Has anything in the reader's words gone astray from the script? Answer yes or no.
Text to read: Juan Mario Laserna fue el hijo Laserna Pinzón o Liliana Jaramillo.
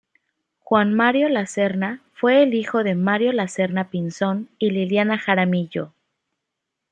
yes